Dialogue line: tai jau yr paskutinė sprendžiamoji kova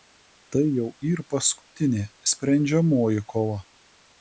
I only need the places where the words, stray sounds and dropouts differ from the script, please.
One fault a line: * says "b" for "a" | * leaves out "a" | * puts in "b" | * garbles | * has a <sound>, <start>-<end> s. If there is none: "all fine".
* has a dropout, 1.6-1.7 s